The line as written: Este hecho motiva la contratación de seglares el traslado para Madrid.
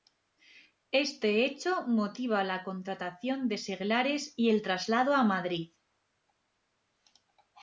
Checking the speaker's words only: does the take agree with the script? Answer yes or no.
no